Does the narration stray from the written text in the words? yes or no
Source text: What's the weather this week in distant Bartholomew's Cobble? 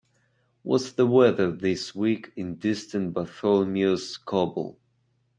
no